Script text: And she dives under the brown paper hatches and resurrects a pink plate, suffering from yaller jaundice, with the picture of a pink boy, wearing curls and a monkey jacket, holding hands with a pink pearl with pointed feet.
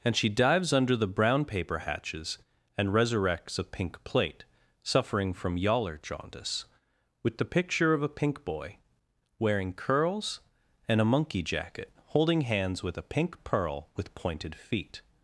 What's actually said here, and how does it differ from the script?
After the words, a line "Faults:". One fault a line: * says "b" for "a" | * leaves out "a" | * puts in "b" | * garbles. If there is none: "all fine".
And she dives under the brown paper hatches and resurrects a pink plate, suffering from yaller jaundice, with the picture of a pink boy, wearing curls and a monkey jacket, holding hands with a pink pearl with pointed feet.
Faults:
all fine